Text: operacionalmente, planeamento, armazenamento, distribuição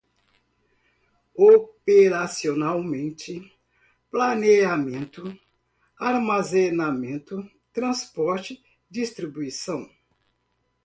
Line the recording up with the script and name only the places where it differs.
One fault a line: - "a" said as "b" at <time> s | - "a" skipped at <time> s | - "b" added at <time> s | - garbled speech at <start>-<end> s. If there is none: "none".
- "transporte" added at 7.7 s